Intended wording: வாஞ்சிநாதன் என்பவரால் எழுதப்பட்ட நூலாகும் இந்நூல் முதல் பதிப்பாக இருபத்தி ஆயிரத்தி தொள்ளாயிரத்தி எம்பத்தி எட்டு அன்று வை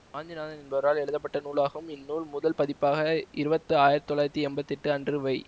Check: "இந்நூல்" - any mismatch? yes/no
no